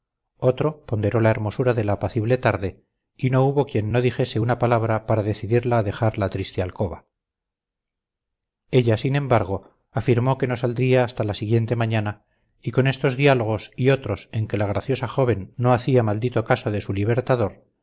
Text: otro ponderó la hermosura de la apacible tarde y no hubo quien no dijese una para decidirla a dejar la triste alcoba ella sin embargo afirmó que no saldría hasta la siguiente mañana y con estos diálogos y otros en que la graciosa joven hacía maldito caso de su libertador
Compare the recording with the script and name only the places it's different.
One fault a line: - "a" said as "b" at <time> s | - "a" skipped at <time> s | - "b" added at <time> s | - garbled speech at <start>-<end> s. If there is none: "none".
- "palabra" added at 4.6 s
- "no" added at 15.6 s